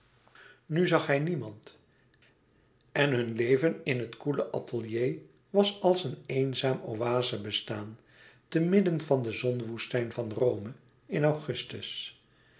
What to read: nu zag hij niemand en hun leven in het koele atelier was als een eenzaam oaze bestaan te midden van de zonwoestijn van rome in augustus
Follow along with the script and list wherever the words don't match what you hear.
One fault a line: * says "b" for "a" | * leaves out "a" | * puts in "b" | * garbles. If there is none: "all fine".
all fine